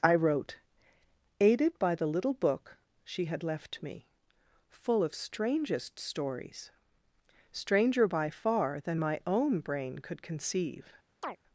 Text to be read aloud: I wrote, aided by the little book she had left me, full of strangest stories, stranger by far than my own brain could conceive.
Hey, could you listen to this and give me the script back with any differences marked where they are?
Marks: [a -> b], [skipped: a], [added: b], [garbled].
I wrote, aided by the little book she had left me, full of strangest stories, stranger by far than my own brain could conceive.